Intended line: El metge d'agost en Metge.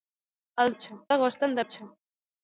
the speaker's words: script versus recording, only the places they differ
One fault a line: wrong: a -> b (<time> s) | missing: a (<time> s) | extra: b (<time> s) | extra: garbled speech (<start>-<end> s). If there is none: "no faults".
no faults